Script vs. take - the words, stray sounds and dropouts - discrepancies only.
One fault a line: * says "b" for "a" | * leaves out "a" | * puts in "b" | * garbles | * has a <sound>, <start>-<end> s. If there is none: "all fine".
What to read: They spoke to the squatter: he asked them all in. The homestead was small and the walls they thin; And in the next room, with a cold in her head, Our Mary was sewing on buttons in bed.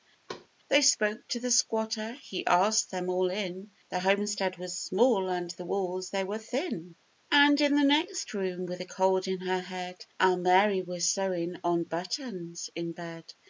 * has a thud, 0.3-0.5 s
* puts in "were"